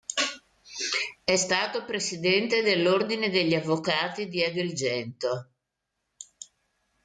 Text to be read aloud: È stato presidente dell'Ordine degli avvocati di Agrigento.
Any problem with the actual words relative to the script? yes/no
no